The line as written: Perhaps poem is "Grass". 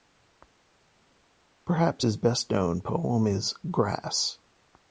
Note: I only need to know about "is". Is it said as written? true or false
true